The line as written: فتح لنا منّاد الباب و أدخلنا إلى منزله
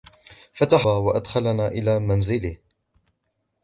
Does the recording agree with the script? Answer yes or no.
no